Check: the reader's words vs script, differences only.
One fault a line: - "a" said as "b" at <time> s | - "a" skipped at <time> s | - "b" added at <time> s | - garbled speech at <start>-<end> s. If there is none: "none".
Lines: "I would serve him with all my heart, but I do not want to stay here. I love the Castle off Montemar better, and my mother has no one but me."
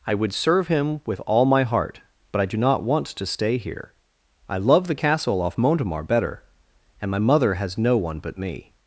none